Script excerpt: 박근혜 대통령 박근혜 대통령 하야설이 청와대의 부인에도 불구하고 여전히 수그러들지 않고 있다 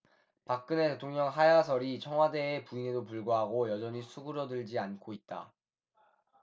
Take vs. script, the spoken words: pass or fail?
fail